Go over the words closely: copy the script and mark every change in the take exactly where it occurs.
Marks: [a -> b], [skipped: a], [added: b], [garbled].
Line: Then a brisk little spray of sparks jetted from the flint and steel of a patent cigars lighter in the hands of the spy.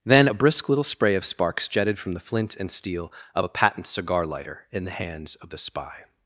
Then a brisk little spray of sparks jetted from the flint and steel of a patent [cigars -> cigar] lighter in the hands of the spy.